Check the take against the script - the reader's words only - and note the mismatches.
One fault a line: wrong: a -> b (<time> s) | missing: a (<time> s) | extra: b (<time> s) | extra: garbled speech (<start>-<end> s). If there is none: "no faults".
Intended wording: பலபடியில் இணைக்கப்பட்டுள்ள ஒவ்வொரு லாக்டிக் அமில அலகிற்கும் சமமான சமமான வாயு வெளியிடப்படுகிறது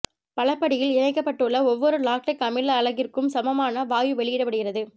missing: சமமான (3.9 s)